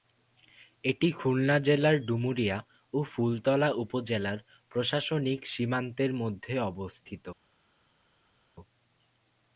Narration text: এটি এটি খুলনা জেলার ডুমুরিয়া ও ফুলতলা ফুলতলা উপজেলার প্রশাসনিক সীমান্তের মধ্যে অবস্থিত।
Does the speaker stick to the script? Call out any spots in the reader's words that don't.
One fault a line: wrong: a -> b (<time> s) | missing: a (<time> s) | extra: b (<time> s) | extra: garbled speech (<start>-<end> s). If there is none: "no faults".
missing: এটি (1.1 s)
missing: ফুলতলা (3.7 s)